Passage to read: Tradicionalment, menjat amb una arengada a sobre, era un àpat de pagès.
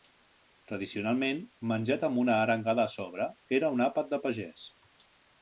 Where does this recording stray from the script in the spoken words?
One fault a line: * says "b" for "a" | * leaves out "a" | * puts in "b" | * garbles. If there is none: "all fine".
all fine